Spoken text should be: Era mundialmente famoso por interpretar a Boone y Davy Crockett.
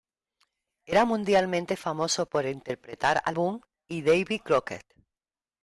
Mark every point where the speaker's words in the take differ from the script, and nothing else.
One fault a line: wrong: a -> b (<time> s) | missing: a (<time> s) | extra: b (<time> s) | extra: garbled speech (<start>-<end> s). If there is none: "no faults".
no faults